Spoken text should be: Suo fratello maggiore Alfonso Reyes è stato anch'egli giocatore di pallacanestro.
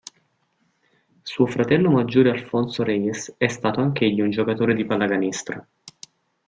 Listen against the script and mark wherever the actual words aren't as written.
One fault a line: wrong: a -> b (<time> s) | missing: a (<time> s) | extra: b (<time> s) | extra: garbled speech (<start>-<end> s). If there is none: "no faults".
extra: un (4.2 s)